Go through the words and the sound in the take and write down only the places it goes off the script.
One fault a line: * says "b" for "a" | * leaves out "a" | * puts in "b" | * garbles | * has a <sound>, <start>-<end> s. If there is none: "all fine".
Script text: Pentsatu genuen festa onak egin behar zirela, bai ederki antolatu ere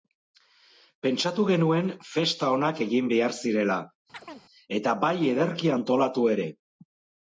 * has a chirp, 4.1-4.4 s
* puts in "eta"